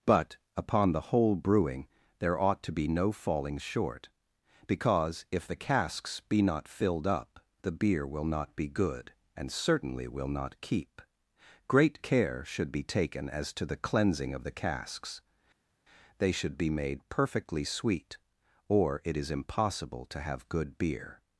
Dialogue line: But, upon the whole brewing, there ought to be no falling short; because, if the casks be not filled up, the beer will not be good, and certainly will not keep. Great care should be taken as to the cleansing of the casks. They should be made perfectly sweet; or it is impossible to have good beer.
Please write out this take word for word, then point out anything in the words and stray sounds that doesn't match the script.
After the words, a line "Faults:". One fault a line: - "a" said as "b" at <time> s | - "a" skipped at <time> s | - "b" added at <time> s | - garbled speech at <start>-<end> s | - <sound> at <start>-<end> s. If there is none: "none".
But, upon the whole brewing, there ought to be no falling short; because, if the casks be not filled up, the beer will not be good, and certainly will not keep. Great care should be taken as to the cleansing of the casks. They should be made perfectly sweet; or it is impossible to have good beer.
Faults:
none